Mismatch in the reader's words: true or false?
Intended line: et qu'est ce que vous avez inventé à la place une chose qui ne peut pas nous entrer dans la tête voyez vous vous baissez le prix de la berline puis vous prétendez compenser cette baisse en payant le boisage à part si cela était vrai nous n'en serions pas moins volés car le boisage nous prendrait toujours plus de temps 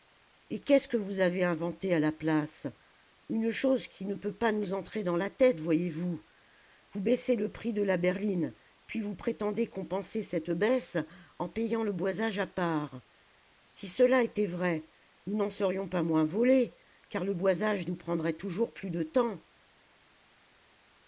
false